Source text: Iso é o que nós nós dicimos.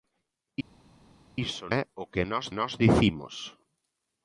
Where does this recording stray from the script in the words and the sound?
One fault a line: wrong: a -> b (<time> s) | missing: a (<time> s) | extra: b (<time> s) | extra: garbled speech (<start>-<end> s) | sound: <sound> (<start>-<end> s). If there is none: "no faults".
no faults